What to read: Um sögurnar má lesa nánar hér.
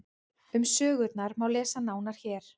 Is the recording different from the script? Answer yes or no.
no